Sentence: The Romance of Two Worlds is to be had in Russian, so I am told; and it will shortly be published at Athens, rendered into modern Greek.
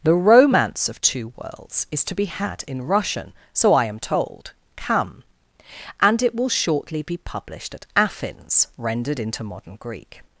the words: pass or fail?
fail